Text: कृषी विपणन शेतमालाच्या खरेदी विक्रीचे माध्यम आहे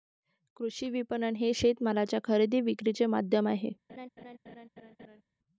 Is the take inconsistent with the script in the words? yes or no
yes